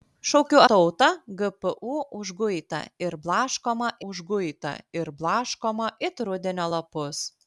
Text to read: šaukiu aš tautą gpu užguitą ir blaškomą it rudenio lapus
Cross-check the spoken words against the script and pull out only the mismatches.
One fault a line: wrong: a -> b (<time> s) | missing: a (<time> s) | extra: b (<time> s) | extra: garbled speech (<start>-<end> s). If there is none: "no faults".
missing: aš (0.6 s)
extra: užguitą ir blaškomą (4.1 s)